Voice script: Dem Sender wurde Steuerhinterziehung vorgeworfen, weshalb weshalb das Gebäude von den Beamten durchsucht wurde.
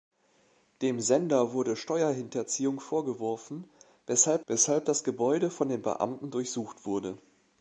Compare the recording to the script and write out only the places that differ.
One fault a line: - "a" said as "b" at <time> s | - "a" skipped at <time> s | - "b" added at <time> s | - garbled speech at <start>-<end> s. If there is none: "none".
none